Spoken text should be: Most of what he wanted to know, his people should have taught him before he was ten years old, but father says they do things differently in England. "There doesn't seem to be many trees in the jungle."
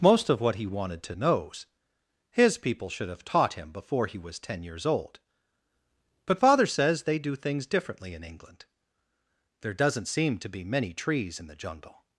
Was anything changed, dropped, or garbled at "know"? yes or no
yes